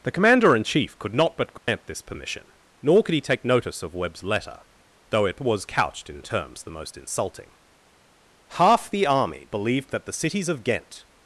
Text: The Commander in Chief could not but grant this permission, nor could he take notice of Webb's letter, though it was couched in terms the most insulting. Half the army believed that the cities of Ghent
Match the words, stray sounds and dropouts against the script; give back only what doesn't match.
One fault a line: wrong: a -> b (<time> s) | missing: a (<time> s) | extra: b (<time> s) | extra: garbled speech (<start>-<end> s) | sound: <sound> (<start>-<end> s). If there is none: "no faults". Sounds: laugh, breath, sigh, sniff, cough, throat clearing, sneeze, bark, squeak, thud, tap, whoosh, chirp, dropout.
sound: dropout (1.6-1.7 s)